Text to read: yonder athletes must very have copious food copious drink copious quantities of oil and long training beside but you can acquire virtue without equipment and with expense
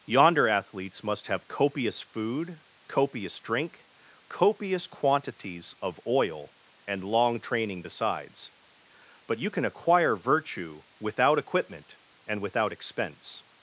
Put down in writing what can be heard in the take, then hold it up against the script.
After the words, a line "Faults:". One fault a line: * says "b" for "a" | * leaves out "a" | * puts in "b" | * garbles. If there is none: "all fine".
yonder athletes must have copious food copious drink copious quantities of oil and long training besides but you can acquire virtue without equipment and without expense
Faults:
* leaves out "very"
* says "besides" for "beside"
* says "without" for "with"